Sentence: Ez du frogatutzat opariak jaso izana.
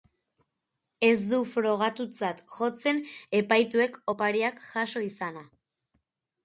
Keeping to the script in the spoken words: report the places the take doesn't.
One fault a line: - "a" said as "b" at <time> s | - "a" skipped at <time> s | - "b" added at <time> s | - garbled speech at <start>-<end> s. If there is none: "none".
- "jotzen epaituek" added at 2.6 s